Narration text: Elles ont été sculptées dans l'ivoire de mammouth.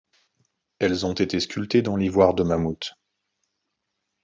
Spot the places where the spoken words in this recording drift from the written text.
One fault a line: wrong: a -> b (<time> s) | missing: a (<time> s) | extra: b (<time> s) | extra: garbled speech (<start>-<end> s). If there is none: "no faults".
no faults